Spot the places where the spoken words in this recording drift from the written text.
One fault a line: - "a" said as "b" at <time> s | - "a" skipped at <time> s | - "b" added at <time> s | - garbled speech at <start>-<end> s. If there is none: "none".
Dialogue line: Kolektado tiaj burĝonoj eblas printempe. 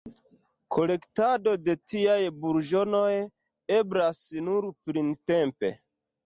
- "de" added at 1.6 s
- "nur" added at 4.5 s